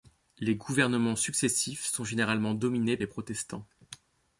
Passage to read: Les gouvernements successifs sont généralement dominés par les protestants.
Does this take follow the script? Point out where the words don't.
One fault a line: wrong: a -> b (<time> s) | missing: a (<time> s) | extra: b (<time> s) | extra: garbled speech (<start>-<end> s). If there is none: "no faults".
missing: par (3.0 s)